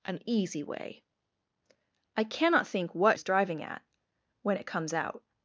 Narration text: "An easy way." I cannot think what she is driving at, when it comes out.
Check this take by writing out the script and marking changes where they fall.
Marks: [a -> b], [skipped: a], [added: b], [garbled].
"An easy way." I cannot think what [skipped: she] is driving at, when it comes out.